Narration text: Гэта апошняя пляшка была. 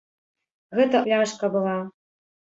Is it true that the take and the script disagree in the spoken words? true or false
true